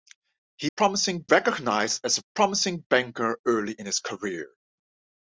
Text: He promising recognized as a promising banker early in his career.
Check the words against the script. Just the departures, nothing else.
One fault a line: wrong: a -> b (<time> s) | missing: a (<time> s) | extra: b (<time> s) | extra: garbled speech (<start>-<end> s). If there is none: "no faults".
no faults